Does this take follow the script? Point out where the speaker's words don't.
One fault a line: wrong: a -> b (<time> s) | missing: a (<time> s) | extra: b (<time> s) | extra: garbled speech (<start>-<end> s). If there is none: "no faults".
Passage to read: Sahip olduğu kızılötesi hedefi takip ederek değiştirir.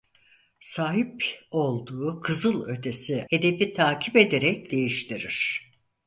no faults